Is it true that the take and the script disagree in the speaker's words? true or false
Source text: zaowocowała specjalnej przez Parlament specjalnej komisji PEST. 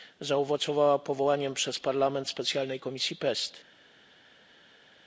true